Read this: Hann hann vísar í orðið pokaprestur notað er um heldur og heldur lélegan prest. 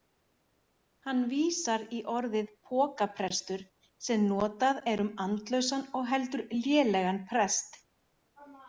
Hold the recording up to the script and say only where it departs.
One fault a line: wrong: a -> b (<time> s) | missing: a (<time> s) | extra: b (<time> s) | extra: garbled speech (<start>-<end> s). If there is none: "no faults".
missing: hann (1.2 s)
extra: sem (4.1 s)
wrong: heldur -> andlausan (5.3 s)